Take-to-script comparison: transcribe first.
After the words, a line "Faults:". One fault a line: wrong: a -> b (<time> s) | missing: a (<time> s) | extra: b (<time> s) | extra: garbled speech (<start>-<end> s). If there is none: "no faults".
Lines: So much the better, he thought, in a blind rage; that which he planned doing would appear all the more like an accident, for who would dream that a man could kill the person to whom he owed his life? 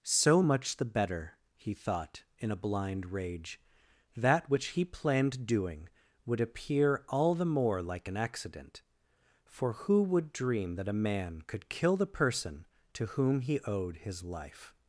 So much the better, he thought, in a blind rage; that which he planned doing would appear all the more like an accident, for who would dream that a man could kill the person to whom he owed his life?
Faults:
no faults